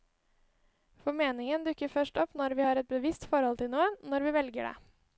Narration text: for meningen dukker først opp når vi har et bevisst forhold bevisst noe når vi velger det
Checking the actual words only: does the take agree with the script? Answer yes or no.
no